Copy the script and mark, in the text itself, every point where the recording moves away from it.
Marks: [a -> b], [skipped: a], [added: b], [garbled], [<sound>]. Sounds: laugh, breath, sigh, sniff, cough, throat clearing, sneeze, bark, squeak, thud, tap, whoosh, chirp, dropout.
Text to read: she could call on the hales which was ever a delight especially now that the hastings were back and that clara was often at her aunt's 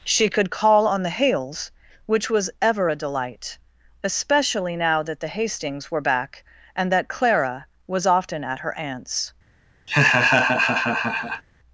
she could call on the hales which was ever a delight especially now that the hastings were back and that clara was often at her aunt's [laugh]